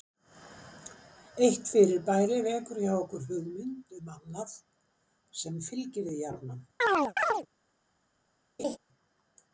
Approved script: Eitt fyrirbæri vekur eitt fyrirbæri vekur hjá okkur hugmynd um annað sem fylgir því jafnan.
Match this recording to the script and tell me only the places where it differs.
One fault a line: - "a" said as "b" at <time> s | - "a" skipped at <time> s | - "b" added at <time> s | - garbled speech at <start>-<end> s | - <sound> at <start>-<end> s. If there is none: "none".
- "eitt fyrirbæri vekur" skipped at 2.8 s
- chirp at 6.8-7.5 s
- laugh at 8.6-8.8 s